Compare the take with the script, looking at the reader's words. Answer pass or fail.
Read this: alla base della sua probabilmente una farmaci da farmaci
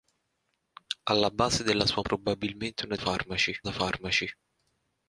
pass